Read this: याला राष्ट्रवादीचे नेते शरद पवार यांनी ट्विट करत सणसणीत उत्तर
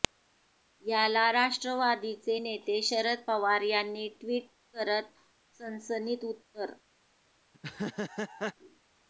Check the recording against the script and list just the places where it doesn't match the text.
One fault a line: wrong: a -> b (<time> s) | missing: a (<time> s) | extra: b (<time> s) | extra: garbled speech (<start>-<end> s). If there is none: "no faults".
no faults